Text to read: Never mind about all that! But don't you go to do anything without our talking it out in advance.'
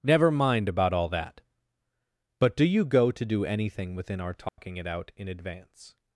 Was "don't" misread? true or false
true